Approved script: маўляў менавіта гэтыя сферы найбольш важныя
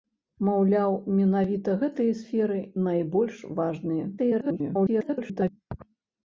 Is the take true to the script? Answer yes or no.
no